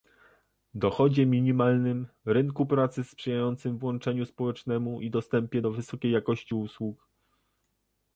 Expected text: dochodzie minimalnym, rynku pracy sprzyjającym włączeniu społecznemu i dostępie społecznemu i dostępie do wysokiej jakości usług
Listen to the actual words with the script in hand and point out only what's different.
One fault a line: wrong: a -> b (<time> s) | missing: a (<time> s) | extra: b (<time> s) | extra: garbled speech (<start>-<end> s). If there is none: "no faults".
missing: społecznemu i dostępie (5.6 s)